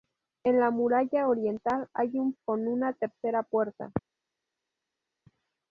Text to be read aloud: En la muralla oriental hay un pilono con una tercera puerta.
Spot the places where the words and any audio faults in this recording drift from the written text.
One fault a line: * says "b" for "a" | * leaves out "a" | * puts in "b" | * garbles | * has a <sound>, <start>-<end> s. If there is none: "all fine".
* leaves out "pilono"